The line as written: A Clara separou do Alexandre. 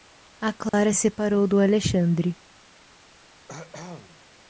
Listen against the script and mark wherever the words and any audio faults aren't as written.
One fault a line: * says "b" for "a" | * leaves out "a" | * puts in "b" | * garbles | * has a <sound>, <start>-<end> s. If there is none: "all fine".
* has a dropout, 0.7-0.7 s
* has a cough, 3.5-4.2 s